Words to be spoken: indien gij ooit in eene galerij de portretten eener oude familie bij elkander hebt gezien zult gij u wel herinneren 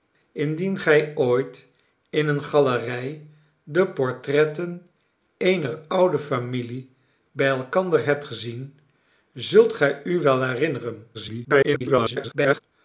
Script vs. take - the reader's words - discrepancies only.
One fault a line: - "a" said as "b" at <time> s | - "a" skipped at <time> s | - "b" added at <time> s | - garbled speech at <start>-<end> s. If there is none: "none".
- garbled speech at 11.1-12.6 s